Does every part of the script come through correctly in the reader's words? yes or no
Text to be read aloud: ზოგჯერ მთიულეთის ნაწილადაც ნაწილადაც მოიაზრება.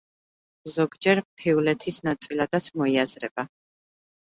no